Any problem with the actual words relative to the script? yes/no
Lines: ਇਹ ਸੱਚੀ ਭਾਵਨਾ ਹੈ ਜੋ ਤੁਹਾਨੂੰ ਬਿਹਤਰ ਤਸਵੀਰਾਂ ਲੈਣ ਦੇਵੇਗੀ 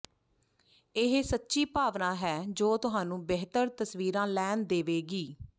no